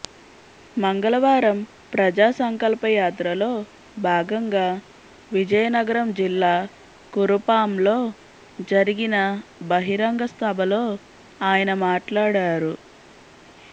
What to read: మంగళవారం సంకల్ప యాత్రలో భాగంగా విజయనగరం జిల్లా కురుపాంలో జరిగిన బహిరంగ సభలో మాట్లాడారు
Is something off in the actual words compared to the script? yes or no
yes